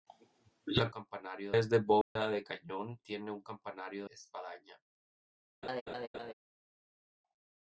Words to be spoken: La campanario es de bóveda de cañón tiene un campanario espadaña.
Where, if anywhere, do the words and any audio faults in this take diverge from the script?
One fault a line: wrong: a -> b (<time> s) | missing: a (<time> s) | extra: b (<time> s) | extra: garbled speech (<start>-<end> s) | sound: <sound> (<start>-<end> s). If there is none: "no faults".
sound: dropout (2.0-2.2 s)
sound: laugh (5.6-6.3 s)